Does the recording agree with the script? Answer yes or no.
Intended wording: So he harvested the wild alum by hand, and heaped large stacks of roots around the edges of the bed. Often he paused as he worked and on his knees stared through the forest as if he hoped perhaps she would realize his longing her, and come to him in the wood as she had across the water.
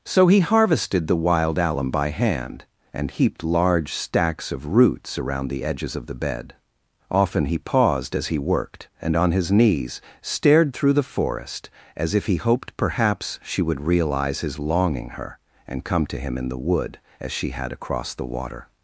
yes